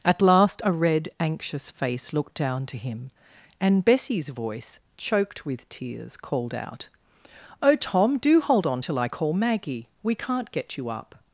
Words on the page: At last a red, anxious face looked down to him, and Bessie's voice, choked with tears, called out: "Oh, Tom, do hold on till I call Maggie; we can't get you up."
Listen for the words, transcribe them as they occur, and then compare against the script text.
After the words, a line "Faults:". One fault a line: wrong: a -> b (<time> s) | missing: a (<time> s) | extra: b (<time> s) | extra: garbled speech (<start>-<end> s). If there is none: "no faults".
At last a red, anxious face looked down to him, and Bessie's voice, choked with tears, called out: "Oh, Tom, do hold on till I call Maggie; we can't get you up."
Faults:
no faults